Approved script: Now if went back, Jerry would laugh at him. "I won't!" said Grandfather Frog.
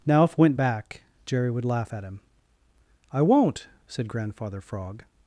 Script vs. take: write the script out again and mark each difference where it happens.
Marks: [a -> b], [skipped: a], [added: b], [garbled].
Now if went back, Jerry would laugh at him. "I won't!" said Grandfather Frog.